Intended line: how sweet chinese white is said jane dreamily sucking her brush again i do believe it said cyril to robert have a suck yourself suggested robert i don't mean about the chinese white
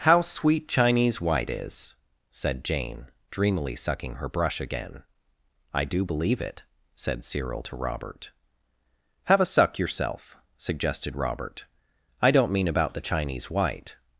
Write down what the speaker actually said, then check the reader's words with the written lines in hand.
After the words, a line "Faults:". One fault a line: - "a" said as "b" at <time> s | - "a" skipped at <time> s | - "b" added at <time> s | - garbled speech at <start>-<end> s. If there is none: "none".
how sweet chinese white is said jane dreamily sucking her brush again i do believe it said cyril to robert have a suck yourself suggested robert i don't mean about the chinese white
Faults:
none